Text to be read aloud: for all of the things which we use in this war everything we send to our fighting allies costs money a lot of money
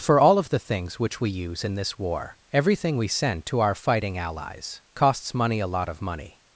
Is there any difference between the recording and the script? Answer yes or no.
no